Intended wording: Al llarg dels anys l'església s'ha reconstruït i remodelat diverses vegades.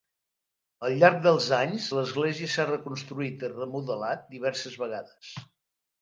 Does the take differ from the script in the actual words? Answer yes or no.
no